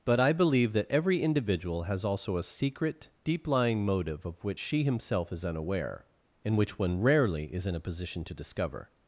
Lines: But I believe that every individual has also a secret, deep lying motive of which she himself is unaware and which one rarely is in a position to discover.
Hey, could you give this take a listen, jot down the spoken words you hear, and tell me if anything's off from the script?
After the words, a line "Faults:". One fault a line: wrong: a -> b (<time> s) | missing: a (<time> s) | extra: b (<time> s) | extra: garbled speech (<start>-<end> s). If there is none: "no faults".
But I believe that every individual has also a secret, deep lying motive of which she himself is unaware and which one rarely is in a position to discover.
Faults:
no faults